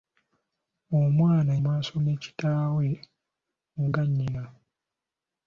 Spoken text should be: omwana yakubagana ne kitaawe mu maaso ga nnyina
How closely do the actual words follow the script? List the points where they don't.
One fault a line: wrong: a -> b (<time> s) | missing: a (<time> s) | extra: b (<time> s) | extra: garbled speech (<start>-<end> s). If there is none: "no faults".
wrong: yakubagana -> maaso (1.6 s)
missing: maaso (3.8 s)